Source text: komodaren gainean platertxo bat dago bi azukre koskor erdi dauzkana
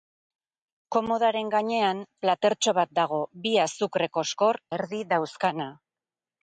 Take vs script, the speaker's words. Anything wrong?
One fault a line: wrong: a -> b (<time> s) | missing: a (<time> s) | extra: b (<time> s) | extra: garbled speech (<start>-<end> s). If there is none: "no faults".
no faults